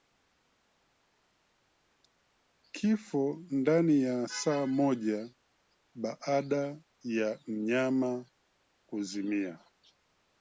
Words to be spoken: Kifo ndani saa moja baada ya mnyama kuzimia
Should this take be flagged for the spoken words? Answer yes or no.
yes